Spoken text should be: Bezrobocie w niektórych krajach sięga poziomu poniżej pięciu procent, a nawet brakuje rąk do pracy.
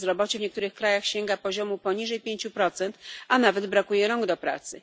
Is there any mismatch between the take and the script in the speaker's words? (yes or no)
no